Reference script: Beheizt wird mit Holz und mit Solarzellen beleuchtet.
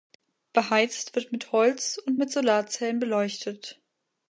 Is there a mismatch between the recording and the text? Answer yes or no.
no